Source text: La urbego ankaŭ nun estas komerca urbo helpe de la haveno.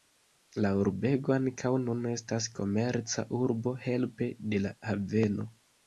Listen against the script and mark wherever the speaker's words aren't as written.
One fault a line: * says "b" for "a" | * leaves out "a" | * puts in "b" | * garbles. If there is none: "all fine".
all fine